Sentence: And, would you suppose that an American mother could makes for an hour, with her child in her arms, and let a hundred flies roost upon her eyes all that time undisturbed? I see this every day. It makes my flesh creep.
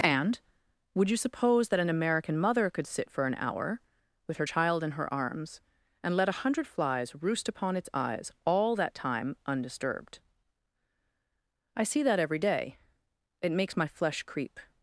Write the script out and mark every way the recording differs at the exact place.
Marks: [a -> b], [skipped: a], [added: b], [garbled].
And, would you suppose that an American mother could [makes -> sit] for an hour, with her child in her arms, and let a hundred flies roost upon [her -> its] eyes all that time undisturbed? I see [this -> that] every day. It makes my flesh creep.